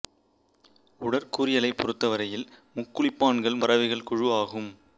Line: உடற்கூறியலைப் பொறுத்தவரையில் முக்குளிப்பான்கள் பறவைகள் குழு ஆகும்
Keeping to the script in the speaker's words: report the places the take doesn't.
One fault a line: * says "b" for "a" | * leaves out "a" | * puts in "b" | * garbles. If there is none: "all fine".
all fine